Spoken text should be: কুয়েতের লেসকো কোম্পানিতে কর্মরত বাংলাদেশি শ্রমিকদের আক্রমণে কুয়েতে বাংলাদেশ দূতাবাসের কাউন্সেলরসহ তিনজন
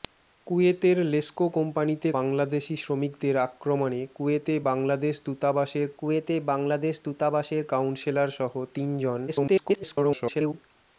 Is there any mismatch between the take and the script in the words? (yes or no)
yes